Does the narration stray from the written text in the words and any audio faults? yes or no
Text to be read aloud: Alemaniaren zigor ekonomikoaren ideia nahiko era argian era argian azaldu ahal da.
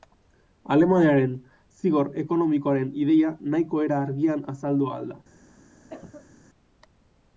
yes